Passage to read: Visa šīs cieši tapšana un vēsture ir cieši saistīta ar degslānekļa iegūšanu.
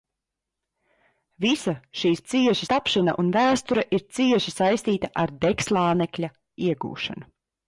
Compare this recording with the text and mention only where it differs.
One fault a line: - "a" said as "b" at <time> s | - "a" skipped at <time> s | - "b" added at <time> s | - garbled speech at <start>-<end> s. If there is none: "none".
none